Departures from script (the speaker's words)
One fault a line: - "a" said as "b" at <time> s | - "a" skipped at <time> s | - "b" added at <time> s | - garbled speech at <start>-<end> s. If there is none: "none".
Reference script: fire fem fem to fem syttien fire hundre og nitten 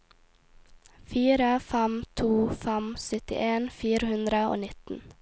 - "fem" skipped at 2.0 s